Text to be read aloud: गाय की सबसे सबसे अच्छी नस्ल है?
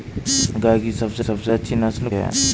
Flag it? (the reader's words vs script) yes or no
no